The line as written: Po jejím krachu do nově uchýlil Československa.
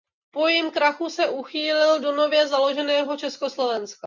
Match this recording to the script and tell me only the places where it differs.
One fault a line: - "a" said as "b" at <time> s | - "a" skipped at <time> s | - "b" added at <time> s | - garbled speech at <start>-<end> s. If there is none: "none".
- "se uchýlil" added at 1.1 s
- "uchýlil" said as "založeného" at 2.5 s